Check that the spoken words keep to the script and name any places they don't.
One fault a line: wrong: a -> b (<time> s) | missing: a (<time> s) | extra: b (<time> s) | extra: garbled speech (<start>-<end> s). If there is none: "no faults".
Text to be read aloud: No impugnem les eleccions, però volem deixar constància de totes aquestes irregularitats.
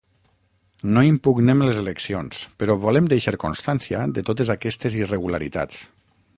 no faults